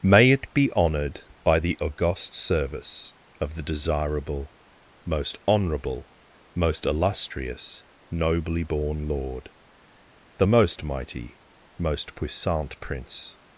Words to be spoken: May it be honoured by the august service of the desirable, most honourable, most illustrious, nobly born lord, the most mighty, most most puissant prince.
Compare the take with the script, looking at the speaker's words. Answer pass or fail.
fail